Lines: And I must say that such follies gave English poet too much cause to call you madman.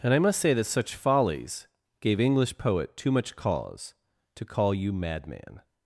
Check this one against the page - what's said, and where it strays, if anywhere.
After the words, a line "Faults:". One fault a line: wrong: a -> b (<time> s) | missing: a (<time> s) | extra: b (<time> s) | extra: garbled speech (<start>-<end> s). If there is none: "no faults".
And I must say that such follies gave English poet too much cause to call you madman.
Faults:
no faults